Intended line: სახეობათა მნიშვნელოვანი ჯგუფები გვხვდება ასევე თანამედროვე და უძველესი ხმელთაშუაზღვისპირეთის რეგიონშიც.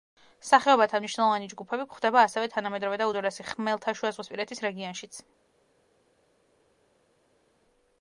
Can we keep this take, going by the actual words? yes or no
yes